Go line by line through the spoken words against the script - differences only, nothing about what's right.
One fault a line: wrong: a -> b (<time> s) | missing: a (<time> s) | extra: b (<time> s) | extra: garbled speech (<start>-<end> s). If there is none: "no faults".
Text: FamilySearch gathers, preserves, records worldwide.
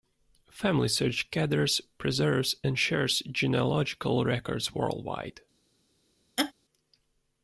extra: and shares genealogical (2.6 s)